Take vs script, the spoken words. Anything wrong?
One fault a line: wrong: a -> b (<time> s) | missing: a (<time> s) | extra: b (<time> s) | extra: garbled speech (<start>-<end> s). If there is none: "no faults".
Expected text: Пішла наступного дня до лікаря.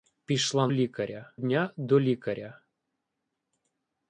wrong: наступного -> лікаря (0.7 s)